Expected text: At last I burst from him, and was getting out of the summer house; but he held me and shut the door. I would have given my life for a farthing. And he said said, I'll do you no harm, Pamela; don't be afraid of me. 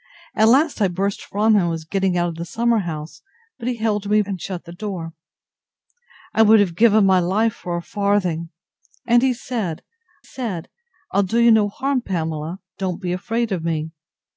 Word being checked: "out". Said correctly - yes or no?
yes